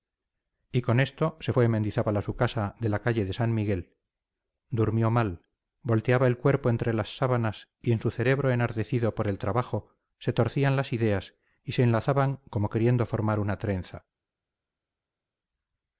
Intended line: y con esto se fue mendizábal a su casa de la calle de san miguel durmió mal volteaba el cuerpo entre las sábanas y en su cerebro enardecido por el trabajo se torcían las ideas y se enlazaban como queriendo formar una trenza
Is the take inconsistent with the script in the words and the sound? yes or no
no